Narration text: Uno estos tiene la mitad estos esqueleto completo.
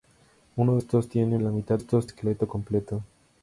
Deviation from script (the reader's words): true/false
false